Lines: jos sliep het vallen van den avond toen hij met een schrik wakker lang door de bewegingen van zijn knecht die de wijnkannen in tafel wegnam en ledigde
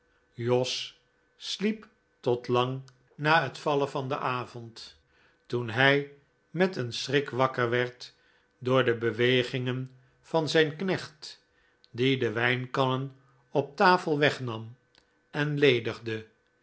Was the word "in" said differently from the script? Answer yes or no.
yes